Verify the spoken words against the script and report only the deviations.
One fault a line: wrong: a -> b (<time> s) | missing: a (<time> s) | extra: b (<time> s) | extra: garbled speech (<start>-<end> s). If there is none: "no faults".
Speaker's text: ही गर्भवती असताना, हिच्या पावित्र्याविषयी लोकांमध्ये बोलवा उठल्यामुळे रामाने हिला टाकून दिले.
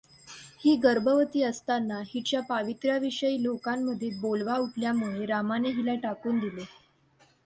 no faults